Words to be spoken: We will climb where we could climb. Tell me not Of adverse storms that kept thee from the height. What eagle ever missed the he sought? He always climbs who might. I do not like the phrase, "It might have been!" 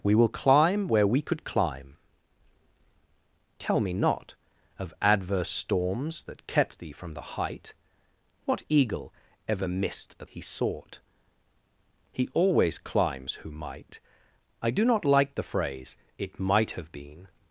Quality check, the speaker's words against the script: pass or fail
pass